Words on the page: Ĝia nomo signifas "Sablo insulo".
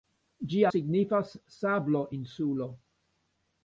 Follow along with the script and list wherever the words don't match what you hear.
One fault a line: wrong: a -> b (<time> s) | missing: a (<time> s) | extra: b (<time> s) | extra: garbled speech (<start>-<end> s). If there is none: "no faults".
missing: nomo (0.7 s)